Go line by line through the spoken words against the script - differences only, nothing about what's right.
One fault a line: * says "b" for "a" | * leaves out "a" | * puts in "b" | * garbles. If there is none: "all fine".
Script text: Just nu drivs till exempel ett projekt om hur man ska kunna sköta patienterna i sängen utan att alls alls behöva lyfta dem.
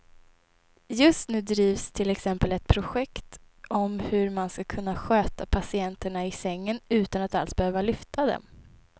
* leaves out "alls"